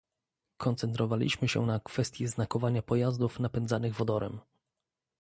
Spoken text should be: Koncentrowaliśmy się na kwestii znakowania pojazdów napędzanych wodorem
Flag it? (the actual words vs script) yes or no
no